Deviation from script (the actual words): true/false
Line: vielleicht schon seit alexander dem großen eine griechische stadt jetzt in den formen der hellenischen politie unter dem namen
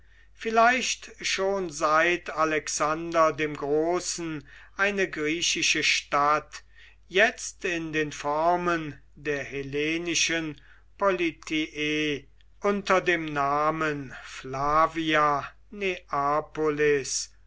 false